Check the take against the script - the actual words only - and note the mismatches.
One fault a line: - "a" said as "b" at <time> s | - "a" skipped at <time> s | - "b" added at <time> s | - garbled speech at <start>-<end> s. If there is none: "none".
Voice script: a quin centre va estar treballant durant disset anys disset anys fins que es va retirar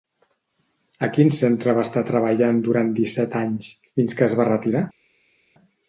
- "disset anys" skipped at 3.7 s